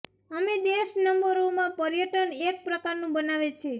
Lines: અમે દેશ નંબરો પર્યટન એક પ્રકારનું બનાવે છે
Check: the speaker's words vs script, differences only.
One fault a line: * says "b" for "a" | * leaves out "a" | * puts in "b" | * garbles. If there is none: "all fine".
* puts in "માં"